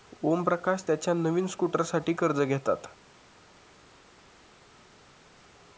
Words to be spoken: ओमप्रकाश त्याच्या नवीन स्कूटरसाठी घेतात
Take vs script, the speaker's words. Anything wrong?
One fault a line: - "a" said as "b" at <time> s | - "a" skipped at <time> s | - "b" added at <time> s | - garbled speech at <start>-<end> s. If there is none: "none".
- "कर्ज" added at 2.1 s